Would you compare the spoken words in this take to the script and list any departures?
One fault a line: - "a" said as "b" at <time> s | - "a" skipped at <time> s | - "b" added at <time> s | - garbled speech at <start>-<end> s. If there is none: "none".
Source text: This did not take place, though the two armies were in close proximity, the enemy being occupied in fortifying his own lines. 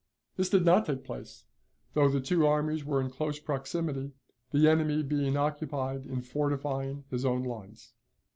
none